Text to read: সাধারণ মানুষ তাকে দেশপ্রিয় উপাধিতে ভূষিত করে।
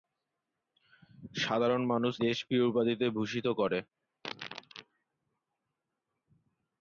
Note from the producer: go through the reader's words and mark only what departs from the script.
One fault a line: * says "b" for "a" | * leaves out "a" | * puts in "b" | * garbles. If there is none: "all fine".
* leaves out "তাকে"